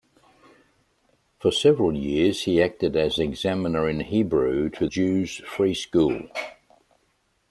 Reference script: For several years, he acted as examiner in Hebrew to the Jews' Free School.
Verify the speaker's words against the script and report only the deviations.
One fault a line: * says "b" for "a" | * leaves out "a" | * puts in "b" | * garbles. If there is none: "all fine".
* leaves out "the"